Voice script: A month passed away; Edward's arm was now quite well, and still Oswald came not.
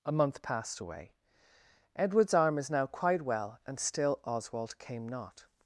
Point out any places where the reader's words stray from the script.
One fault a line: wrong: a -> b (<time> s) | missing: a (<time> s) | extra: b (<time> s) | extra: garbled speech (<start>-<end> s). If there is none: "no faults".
wrong: was -> is (2.6 s)